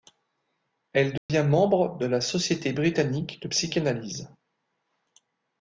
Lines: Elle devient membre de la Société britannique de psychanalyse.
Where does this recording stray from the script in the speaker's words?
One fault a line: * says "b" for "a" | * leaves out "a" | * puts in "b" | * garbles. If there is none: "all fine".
all fine